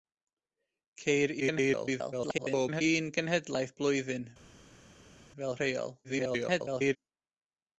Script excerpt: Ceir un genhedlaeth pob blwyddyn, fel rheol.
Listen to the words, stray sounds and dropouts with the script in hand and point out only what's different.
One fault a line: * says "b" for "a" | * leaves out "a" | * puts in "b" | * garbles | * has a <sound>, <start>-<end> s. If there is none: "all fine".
* garbles
* leaves out "pob"
* garbles